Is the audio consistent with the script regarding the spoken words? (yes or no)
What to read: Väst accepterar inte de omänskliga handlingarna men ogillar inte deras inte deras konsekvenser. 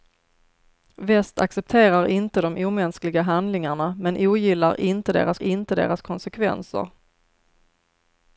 yes